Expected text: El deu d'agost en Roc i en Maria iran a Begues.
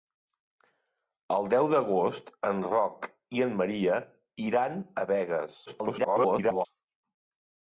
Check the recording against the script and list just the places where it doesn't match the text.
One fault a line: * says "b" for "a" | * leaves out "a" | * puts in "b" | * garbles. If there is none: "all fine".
* garbles